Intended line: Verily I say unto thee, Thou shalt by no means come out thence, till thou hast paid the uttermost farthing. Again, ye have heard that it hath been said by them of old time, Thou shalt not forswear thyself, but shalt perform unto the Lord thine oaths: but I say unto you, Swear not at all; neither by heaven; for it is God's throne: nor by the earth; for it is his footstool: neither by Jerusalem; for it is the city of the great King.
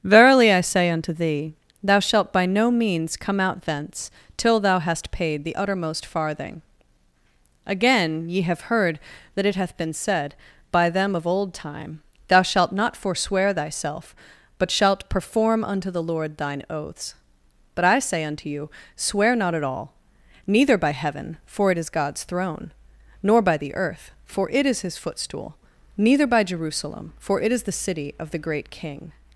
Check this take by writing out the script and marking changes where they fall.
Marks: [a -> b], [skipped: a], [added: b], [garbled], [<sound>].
Verily I say unto thee, Thou shalt by no means come out thence, till thou hast paid the uttermost farthing. Again, ye have heard that it hath been said by them of old time, Thou shalt not forswear thyself, but shalt perform unto the Lord thine oaths: but I say unto you, Swear not at all; neither by heaven; for it is God's throne: nor by the earth; for it is his footstool: neither by Jerusalem; for it is the city of the great King.